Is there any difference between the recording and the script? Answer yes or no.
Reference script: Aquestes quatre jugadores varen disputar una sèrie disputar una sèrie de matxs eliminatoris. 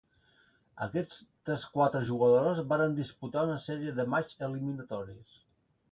yes